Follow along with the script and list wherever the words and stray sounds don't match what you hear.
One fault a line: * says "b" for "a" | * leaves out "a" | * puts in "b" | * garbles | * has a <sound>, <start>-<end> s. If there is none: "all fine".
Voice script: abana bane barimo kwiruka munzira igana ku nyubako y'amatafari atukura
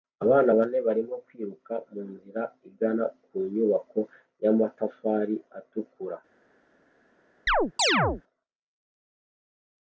* has a chirp, 7.5-8.2 s